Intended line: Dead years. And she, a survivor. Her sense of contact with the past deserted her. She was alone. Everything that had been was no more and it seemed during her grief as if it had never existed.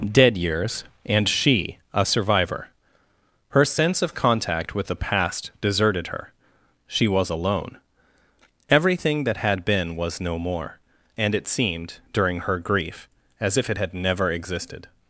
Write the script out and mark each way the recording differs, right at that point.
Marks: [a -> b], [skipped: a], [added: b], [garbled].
Dead years. And she, a survivor. Her sense of contact with the past deserted her. She was alone. Everything that had been was no more and it seemed during her grief as if it had never existed.